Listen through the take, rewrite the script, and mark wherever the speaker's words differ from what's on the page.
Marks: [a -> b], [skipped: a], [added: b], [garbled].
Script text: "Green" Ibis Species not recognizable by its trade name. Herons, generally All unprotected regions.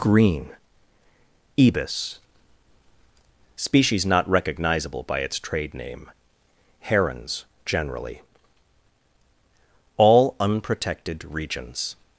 "Green" Ibis Species not recognizable by its trade name. Herons, generally All unprotected regions.